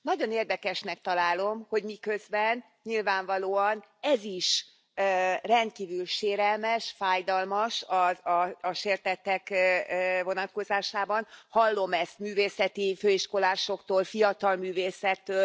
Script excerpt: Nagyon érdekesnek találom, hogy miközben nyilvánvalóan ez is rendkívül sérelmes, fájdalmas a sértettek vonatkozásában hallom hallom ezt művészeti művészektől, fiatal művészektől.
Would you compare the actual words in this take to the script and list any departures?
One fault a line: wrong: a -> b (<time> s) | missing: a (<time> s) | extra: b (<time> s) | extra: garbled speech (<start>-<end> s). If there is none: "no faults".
missing: hallom (11.9 s)
wrong: művészektől -> főiskolásoktól (12.9 s)